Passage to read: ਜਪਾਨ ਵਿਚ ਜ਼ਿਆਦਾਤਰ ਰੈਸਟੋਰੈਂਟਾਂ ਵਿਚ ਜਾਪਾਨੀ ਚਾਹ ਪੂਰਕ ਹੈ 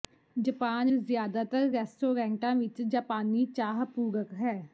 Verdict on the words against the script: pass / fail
fail